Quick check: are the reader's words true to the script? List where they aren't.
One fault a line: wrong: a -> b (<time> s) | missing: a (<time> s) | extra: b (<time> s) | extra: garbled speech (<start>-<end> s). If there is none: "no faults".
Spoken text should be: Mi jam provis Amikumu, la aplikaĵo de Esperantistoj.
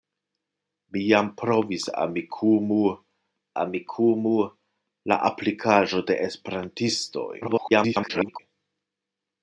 extra: Amikumu (3.6 s)
extra: garbled speech (7.4-8.4 s)